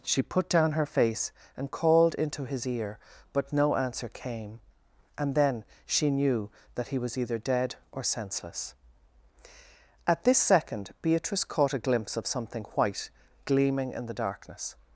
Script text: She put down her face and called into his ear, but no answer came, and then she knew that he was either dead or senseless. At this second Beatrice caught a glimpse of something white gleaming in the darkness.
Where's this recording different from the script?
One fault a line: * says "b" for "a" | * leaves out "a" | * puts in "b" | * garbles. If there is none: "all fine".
all fine